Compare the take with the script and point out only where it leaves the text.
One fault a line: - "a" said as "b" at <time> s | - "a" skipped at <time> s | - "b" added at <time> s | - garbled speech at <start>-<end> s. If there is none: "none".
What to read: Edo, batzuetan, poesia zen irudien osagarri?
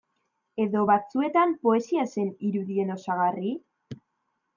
none